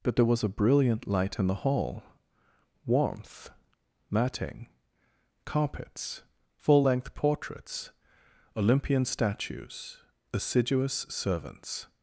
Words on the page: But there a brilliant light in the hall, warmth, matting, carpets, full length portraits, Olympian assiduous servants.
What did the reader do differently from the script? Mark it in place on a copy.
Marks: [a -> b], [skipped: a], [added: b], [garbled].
But there [added: was] a brilliant light in the hall, warmth, matting, carpets, full length portraits, Olympian [added: statues] assiduous servants.